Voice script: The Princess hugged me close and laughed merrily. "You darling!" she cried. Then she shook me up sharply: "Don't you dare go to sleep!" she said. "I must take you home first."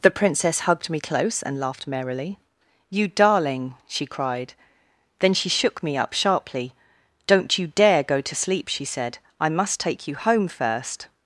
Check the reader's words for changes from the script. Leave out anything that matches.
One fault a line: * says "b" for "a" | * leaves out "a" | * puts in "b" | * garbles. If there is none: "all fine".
all fine